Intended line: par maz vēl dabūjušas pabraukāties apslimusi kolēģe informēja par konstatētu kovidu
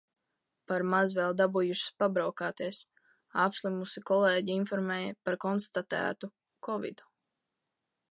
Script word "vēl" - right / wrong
right